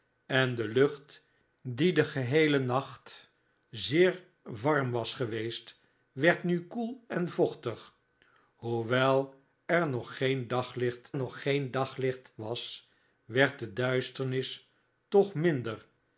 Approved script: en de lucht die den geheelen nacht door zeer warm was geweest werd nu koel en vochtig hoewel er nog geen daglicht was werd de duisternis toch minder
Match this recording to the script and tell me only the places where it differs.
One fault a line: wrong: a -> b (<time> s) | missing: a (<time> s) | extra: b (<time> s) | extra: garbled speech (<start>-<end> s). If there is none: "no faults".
missing: door (3.3 s)
extra: nog geen daglicht (11.1 s)